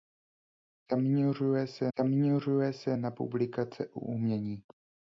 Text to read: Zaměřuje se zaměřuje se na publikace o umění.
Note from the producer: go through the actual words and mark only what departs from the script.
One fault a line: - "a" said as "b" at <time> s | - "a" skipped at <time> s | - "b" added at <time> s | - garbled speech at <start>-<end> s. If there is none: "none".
none